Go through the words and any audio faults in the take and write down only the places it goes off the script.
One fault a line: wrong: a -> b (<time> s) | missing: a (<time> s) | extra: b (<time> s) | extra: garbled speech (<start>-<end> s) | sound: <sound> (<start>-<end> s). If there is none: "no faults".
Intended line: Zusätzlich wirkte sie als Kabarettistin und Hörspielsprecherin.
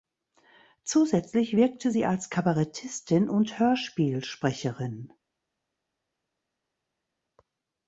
no faults